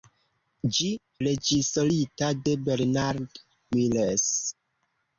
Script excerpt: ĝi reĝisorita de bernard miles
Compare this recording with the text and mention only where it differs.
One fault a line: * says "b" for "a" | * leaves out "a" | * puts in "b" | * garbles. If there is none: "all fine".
all fine